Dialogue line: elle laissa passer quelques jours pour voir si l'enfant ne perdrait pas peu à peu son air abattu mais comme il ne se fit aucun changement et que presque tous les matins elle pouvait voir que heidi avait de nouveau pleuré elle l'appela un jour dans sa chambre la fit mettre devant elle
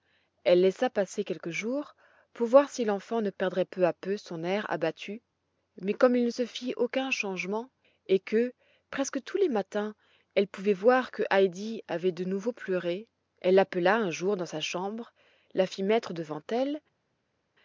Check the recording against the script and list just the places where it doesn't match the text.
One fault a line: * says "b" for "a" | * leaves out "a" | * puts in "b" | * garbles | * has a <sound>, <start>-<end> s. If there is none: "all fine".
* leaves out "pas"